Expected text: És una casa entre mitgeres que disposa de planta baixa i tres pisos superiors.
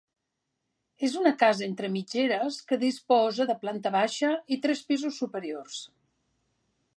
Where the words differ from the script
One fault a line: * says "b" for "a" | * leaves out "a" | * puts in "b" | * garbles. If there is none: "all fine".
all fine